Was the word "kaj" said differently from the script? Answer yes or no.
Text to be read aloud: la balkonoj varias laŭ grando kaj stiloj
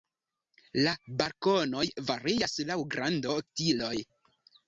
yes